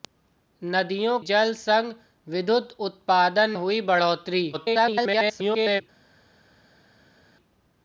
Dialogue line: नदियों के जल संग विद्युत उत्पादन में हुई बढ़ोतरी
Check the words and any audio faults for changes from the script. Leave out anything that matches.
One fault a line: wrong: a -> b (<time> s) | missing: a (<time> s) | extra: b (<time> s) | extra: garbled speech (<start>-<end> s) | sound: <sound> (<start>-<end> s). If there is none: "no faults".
missing: के (1.2 s)
missing: में (3.5 s)
extra: garbled speech (4.5-5.8 s)